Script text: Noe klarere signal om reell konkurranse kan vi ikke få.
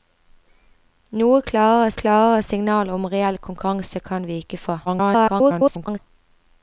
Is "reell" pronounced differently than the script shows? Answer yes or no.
no